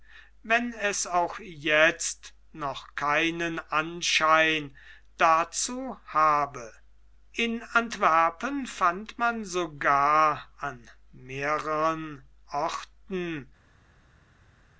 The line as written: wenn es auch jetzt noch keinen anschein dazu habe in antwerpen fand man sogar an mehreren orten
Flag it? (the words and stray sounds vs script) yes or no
no